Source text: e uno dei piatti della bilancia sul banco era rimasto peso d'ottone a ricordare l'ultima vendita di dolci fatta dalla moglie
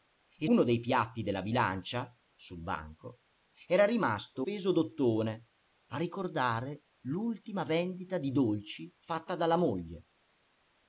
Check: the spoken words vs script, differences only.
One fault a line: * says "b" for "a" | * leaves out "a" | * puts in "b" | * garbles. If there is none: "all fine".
all fine